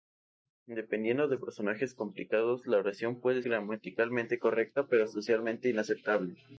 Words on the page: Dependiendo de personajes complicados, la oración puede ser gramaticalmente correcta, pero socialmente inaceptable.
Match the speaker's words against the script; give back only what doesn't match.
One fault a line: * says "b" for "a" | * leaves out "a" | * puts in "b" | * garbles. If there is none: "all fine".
* leaves out "ser"